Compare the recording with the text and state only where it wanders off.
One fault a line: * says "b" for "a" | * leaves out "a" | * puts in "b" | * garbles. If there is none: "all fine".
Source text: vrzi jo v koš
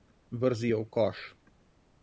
all fine